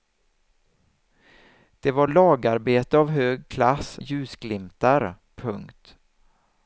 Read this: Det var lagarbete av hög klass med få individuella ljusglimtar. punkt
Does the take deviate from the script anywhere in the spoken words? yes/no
yes